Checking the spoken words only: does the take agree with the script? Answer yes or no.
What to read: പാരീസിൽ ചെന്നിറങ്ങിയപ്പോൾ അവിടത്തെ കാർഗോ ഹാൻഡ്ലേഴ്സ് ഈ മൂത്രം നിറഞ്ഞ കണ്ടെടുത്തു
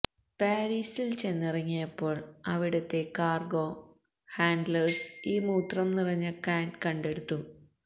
no